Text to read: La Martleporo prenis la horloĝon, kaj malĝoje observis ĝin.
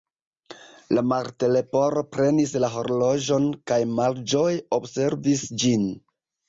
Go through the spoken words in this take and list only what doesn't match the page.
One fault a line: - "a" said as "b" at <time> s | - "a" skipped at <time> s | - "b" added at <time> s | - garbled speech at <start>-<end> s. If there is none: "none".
none